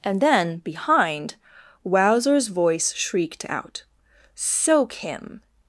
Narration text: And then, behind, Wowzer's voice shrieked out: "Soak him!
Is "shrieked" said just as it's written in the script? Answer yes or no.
yes